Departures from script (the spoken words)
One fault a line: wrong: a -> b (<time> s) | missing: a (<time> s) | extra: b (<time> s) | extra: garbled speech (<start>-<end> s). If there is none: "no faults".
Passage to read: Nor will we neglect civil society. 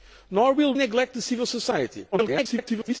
missing: we (0.7 s)
extra: garbled speech (2.1-3.0 s)